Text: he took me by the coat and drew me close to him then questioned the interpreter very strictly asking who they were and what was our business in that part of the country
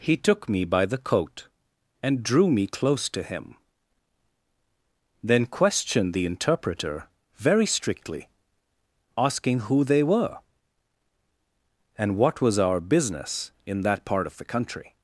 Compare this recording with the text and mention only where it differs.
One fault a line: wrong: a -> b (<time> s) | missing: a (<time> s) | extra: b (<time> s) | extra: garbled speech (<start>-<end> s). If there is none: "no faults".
no faults